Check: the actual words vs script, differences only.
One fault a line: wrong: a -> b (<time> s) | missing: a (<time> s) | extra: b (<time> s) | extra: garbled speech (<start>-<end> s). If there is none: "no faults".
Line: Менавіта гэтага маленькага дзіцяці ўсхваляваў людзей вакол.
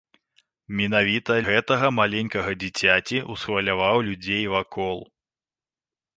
no faults